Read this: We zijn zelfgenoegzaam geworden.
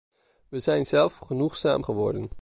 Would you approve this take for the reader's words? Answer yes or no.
yes